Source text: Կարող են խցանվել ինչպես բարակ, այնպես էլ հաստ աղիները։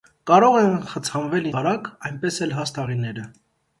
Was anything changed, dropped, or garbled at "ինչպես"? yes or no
yes